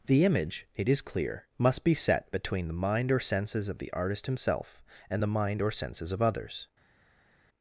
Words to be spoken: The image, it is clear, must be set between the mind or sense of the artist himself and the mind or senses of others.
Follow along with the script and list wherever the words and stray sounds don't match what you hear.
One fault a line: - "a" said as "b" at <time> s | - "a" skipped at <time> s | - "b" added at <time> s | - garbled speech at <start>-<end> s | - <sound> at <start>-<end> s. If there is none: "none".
- "sense" said as "senses" at 3.2 s